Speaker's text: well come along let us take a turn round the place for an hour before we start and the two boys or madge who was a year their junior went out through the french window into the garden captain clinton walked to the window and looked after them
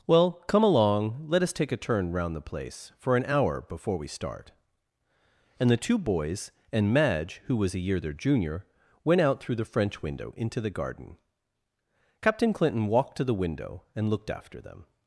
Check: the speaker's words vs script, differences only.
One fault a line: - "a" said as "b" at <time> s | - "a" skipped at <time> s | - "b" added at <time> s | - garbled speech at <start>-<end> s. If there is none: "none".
- "or" said as "and" at 6.7 s